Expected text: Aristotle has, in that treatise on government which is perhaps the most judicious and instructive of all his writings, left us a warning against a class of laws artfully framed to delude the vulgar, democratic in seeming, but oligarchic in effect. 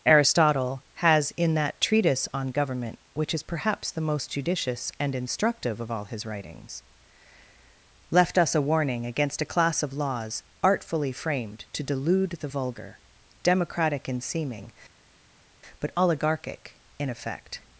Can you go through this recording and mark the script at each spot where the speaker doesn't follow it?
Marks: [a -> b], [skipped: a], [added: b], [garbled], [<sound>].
Aristotle has, in that treatise on government which is perhaps the most judicious and instructive of all his writings, left us a warning against a class of laws artfully framed to delude the vulgar, democratic in seeming, but oligarchic in effect.